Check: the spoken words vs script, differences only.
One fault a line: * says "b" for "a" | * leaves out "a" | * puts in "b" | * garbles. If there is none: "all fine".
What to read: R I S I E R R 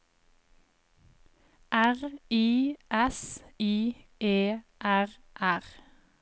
all fine